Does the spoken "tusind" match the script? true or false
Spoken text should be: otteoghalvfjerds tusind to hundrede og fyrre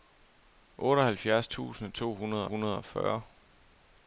true